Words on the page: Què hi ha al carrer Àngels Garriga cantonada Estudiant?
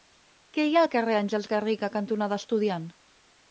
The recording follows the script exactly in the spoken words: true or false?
true